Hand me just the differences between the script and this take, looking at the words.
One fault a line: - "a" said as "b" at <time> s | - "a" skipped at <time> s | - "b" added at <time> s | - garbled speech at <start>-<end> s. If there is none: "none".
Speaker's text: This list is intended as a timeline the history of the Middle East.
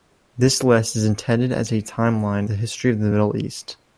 none